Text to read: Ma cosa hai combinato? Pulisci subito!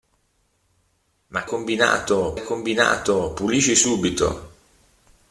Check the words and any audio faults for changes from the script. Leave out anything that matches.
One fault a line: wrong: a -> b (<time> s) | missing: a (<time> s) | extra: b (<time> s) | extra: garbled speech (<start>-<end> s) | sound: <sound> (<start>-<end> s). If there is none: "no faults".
wrong: cosa -> combinato (1.5 s)